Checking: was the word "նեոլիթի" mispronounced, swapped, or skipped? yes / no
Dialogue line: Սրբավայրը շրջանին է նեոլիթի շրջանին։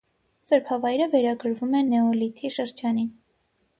no